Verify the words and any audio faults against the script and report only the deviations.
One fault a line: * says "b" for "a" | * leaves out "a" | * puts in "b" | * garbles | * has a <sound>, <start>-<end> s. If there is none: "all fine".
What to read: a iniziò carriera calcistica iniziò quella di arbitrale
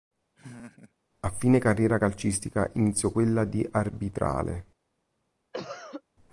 * has a laugh, 0.3-0.9 s
* says "fine" for "iniziò"
* has a cough, 5.5-6.0 s